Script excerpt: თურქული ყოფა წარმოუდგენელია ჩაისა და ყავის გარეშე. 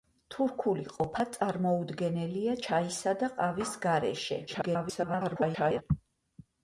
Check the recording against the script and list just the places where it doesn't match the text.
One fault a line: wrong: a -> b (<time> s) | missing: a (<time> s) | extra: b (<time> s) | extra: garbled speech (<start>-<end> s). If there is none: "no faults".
extra: garbled speech (4.5-5.8 s)